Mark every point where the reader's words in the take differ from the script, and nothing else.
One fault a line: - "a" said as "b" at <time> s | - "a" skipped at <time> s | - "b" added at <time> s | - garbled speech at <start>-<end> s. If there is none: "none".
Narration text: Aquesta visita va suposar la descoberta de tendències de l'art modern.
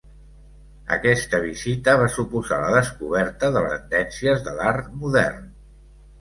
none